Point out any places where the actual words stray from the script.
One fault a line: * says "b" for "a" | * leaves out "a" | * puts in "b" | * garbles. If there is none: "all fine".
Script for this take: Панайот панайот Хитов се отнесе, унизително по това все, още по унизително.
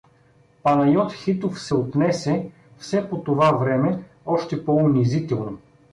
* leaves out "панайот"
* says "все" for "унизително"
* says "време" for "все"